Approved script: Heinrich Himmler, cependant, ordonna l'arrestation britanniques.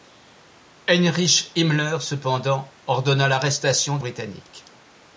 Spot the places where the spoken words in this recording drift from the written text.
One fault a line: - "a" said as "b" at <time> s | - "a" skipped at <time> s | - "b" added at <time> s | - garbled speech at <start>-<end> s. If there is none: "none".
none